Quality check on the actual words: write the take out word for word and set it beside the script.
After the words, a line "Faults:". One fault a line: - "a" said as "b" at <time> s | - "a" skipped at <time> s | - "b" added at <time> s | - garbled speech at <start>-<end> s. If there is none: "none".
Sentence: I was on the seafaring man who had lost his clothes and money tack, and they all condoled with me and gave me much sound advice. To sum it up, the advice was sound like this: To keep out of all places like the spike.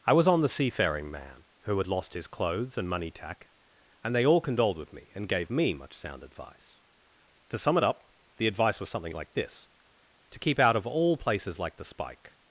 I was on the seafaring man who had lost his clothes and money tack, and they all condoled with me and gave me much sound advice. To sum it up, the advice was something like this: To keep out of all places like the spike.
Faults:
- "sound" said as "something" at 8.9 s